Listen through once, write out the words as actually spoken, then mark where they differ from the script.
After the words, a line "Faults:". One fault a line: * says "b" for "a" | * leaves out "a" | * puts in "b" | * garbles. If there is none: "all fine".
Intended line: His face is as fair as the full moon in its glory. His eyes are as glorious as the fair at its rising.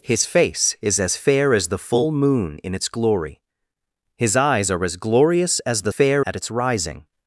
His face is as fair as the full moon in its glory. His eyes are as glorious as the fair at its rising.
Faults:
all fine